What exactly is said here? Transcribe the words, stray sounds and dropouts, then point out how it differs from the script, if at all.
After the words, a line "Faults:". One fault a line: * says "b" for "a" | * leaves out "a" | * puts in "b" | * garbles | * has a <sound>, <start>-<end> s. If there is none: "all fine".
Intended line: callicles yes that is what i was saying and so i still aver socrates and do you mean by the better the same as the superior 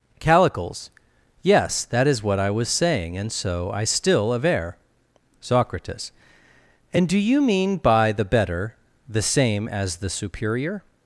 callicles yes that is what i was saying and so i still aver socrates and do you mean by the better the same as the superior
Faults:
all fine